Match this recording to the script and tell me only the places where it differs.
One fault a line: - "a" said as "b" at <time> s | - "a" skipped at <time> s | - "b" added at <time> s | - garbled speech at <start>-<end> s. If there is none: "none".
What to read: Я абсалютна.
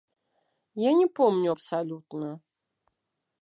- "не помню" added at 0.9 s